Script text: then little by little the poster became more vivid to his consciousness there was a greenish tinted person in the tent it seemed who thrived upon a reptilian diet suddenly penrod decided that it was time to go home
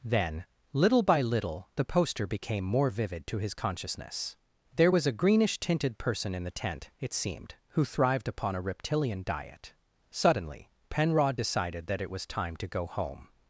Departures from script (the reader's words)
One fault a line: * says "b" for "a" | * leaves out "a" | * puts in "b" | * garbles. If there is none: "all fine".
all fine